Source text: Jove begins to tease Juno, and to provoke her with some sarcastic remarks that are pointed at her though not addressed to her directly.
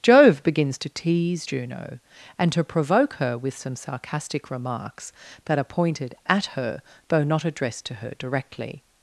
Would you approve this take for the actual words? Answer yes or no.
yes